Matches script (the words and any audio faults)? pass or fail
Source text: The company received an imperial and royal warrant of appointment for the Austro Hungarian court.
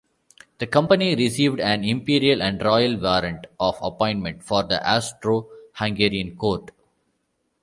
pass